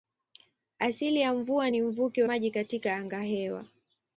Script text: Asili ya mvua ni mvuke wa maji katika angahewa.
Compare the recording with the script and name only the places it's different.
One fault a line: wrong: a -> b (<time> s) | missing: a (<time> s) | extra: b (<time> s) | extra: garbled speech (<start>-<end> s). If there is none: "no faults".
missing: wa (2.2 s)